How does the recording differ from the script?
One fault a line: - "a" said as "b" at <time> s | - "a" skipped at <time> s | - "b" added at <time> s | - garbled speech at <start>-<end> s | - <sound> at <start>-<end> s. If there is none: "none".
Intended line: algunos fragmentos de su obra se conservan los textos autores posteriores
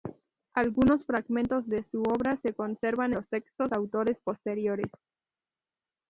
none